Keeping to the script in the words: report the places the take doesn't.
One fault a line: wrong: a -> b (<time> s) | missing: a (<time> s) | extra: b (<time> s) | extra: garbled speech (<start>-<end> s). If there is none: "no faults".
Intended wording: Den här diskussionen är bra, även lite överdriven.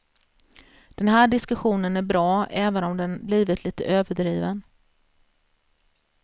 extra: om den blivit (2.8 s)